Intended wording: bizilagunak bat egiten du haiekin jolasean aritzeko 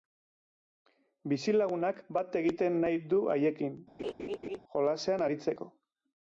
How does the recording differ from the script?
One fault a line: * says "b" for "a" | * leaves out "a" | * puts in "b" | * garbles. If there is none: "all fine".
* puts in "nahi"